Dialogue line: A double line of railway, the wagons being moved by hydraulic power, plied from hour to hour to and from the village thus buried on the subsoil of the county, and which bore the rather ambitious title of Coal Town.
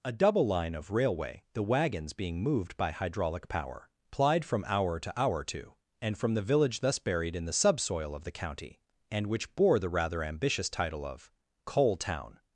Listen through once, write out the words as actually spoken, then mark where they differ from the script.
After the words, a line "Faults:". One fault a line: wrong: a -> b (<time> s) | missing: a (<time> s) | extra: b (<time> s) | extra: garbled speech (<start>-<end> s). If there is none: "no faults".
A double line of railway, the wagons being moved by hydraulic power, plied from hour to hour to and from the village thus buried in the subsoil of the county, and which bore the rather ambitious title of Coal Town.
Faults:
wrong: on -> in (7.3 s)